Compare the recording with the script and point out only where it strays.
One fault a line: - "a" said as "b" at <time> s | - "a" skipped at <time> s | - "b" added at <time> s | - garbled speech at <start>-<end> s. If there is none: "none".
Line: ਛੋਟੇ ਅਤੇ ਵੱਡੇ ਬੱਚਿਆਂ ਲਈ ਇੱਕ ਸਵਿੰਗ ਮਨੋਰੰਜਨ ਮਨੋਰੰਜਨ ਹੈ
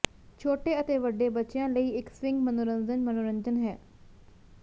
none